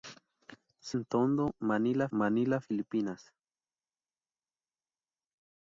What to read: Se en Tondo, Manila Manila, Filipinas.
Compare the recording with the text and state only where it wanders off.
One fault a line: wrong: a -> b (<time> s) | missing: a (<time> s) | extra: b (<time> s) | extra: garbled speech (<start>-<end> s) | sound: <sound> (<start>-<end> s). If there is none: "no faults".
no faults